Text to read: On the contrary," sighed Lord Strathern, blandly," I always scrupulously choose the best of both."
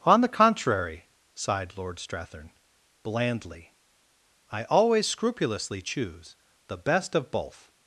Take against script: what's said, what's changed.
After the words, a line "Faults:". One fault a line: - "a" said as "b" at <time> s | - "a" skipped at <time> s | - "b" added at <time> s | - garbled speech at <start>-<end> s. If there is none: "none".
On the contrary," sighed Lord Strathern, blandly," I always scrupulously choose the best of both."
Faults:
none